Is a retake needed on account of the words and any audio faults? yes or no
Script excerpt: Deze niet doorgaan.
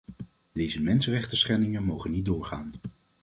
yes